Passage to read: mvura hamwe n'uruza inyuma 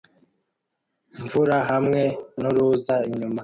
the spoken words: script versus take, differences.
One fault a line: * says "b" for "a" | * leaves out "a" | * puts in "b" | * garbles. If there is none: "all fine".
all fine